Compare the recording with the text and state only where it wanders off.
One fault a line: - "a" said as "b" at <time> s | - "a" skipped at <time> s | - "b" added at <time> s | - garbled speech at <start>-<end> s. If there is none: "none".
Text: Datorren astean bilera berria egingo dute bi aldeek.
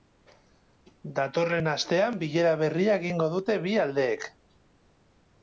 none